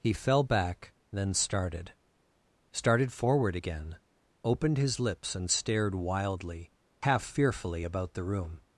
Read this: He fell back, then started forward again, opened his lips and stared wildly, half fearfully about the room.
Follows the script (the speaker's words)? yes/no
no